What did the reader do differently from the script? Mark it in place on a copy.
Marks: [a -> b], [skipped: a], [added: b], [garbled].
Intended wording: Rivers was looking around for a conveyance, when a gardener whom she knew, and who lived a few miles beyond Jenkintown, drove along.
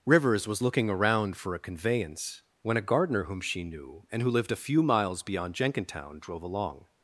Rivers was looking around for a conveyance, when a gardener whom she knew, and who lived a few miles beyond Jenkintown, drove along.